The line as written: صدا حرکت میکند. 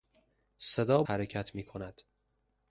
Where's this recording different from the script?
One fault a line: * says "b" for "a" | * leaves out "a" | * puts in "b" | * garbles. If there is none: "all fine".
all fine